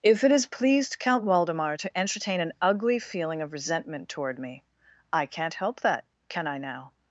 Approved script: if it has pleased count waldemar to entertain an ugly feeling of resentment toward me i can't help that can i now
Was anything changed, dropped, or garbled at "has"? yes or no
no